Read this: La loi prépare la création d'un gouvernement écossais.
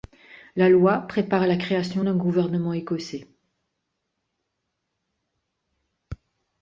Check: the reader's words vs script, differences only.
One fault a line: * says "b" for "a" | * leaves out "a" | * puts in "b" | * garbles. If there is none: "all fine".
all fine